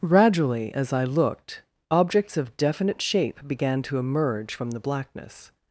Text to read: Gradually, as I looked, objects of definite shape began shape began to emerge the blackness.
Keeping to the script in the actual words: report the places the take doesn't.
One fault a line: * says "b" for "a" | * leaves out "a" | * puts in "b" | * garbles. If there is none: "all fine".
* leaves out "shape began"
* puts in "from"